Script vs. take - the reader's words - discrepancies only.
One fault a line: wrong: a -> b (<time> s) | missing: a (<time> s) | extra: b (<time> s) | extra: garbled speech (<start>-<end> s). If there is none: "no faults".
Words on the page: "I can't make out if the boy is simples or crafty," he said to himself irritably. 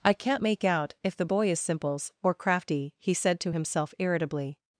no faults